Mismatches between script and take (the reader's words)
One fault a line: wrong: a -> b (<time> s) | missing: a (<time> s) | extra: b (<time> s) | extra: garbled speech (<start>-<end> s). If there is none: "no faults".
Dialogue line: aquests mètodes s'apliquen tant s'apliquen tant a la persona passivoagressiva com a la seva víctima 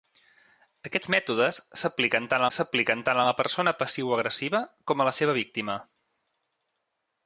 no faults